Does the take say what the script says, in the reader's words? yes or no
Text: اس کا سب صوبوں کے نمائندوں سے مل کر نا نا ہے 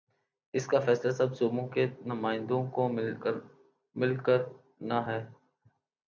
no